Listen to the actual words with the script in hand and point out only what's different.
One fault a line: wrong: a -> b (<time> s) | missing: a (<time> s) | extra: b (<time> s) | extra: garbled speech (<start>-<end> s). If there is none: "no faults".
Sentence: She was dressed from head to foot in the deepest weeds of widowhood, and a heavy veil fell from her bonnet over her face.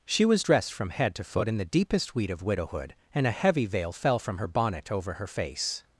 wrong: weeds -> weed (2.1 s)